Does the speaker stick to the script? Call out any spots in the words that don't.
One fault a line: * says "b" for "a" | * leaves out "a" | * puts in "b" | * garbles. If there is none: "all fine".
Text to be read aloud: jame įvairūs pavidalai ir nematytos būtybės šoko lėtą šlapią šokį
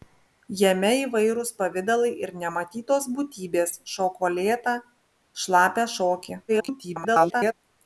* garbles